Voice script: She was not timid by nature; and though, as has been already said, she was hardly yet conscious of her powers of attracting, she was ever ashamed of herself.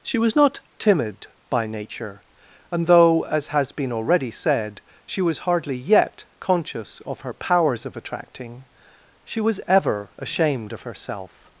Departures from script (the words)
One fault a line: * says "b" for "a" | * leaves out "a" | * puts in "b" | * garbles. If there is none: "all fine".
all fine